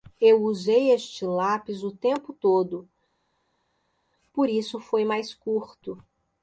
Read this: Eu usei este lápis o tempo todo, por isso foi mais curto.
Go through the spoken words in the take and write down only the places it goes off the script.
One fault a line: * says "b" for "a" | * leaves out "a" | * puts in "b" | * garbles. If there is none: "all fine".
all fine